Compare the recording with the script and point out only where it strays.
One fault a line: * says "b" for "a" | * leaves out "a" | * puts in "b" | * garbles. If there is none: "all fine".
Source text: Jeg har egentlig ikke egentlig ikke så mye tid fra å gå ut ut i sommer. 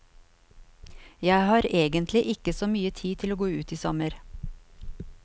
* leaves out "egentlig ikke"
* says "til" for "fra"
* leaves out "ut"